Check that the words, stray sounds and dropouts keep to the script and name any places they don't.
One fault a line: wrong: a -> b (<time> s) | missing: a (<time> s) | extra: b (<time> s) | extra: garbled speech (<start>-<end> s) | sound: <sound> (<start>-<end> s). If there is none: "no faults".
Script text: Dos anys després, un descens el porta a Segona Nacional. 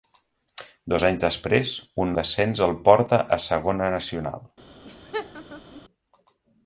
sound: laugh (4.8-5.8 s)